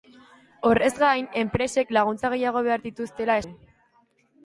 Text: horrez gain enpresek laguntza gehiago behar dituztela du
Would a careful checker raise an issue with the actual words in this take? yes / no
no